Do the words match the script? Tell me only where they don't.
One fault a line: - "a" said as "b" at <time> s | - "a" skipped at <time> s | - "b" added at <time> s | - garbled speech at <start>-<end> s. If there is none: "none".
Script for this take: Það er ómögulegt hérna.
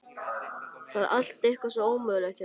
- "allt eitthvað svo" added at 1.2 s